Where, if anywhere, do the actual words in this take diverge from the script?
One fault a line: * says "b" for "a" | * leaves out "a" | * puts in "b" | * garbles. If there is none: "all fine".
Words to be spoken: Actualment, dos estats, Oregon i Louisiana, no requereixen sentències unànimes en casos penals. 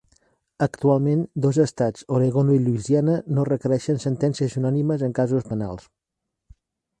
all fine